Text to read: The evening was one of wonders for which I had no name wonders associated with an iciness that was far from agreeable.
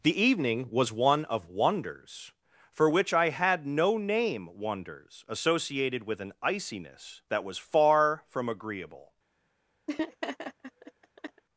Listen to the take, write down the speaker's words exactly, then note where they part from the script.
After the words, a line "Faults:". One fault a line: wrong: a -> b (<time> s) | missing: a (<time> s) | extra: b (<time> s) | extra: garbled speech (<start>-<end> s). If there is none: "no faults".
The evening was one of wonders for which I had no name wonders associated with an iciness that was far from agreeable.
Faults:
no faults